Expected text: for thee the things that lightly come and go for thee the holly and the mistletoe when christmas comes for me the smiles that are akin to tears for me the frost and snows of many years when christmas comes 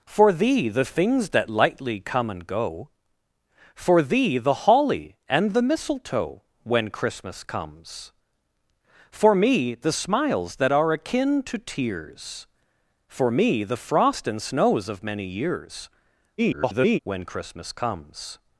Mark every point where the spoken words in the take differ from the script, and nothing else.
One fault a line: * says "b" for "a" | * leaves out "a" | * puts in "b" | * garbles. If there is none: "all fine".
* garbles